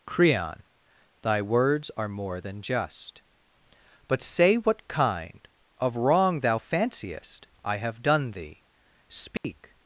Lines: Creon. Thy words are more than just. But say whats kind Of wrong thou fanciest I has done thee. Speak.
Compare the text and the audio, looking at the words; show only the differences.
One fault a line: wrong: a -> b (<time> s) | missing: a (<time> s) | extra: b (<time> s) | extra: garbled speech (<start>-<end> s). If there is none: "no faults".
wrong: whats -> what (4.5 s)
wrong: has -> have (7.8 s)